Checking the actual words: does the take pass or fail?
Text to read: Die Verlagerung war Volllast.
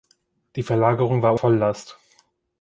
pass